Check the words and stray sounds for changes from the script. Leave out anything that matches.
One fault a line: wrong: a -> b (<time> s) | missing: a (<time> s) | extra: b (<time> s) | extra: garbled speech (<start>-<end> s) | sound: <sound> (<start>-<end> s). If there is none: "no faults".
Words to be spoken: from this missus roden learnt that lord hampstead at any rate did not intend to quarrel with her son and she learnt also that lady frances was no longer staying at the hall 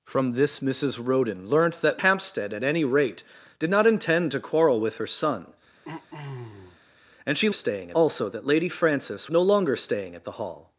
missing: lord (2.0 s)
sound: throat clearing (5.8-6.8 s)
wrong: learnt -> staying (7.5 s)
missing: was (9.3 s)